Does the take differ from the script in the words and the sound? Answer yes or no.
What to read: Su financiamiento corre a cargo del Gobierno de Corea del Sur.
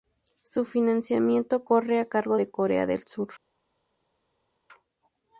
yes